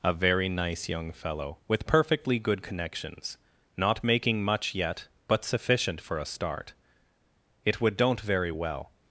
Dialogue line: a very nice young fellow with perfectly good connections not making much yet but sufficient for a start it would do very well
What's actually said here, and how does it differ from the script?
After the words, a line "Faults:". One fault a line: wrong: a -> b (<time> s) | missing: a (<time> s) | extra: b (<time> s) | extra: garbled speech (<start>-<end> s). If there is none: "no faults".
a very nice young fellow with perfectly good connections not making much yet but sufficient for a start it would don't very well
Faults:
wrong: do -> don't (8.0 s)